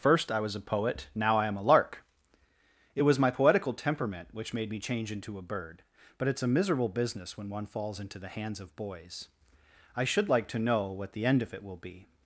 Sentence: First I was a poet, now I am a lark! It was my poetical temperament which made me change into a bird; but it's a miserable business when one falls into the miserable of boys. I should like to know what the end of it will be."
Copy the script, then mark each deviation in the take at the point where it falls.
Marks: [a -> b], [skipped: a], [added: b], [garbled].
First I was a poet, now I am a lark! It was my poetical temperament which made me change into a bird; but it's a miserable business when one falls into the [miserable -> hands] of boys. I should like to know what the end of it will be."